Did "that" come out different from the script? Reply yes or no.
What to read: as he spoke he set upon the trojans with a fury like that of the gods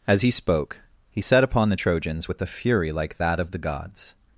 no